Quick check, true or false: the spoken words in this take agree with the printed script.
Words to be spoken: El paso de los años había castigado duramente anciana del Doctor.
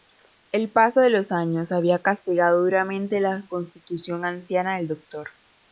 false